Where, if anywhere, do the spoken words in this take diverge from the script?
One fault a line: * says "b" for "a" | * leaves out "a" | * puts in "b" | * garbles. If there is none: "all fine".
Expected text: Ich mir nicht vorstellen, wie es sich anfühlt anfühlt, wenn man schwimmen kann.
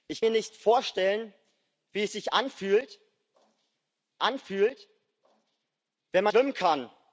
all fine